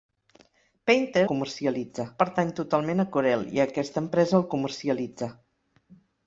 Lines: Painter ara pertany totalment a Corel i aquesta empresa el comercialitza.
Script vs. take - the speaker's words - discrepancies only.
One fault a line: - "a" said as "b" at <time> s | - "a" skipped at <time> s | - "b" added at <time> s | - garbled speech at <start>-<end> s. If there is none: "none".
- "ara" said as "comercialitza" at 1.3 s